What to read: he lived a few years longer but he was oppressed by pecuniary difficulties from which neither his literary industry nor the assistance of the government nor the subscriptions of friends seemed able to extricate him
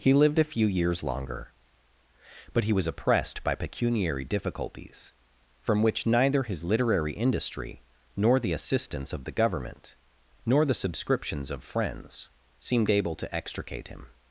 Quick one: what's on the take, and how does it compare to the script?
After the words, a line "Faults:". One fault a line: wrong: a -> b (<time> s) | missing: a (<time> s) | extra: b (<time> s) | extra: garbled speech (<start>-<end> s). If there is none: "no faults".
he lived a few years longer but he was oppressed by pecuniary difficulties from which neither his literary industry nor the assistance of the government nor the subscriptions of friends seemed able to extricate him
Faults:
no faults